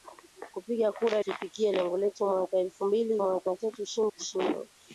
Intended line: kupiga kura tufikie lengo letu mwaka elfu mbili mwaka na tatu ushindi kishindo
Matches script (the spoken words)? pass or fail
pass